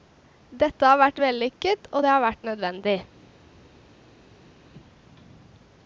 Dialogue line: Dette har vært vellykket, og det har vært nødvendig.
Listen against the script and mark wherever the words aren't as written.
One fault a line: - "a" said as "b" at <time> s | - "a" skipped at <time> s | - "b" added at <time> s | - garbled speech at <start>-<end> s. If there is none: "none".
none